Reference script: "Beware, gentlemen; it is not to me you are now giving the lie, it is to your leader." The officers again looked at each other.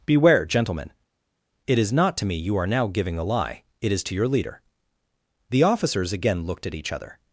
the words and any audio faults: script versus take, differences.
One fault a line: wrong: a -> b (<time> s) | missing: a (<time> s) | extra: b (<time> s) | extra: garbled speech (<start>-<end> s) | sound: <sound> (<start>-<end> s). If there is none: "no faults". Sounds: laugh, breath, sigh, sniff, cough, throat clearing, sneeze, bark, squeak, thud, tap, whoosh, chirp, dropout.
wrong: the -> a (3.2 s)